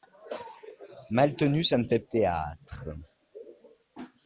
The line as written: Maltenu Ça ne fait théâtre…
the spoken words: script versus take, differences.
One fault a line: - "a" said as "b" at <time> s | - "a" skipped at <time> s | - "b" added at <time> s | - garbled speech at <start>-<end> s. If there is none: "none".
none